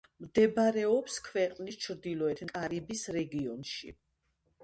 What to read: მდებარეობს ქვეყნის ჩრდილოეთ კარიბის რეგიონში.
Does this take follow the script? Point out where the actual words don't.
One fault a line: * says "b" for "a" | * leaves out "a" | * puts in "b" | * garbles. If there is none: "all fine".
all fine